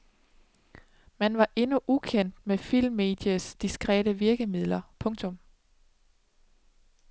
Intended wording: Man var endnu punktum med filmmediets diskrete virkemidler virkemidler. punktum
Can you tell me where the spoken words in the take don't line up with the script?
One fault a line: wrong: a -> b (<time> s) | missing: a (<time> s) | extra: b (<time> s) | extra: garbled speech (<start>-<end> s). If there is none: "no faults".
wrong: punktum -> ukendt (1.9 s)
missing: virkemidler (4.8 s)